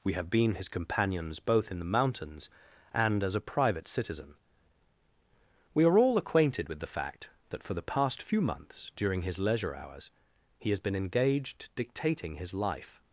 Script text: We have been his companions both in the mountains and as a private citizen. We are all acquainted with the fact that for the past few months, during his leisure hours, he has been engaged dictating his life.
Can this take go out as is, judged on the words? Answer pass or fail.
pass